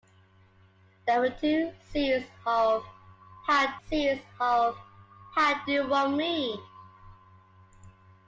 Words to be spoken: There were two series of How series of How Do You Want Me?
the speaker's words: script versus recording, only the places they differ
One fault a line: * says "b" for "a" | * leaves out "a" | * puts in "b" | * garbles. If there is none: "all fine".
all fine